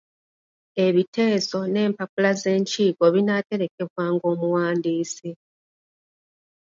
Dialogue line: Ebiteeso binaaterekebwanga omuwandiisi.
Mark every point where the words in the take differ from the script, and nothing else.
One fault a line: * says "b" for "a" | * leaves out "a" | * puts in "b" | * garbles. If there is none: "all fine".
* puts in "n'Empapula z'Enkiiko"